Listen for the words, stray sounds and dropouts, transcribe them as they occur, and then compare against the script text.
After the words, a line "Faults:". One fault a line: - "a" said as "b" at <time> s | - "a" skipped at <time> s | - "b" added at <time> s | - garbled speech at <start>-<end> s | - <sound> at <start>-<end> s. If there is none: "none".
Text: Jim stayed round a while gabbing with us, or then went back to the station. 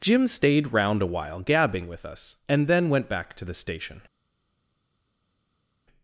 Jim stayed round a while gabbing with us, and then went back to the station.
Faults:
- "or" said as "and" at 2.5 s